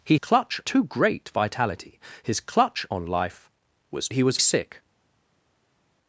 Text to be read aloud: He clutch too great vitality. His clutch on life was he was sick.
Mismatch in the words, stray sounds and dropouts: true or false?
false